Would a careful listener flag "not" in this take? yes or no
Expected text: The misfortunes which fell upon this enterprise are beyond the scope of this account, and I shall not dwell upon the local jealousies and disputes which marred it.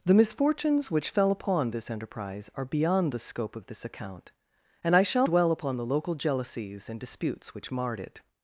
yes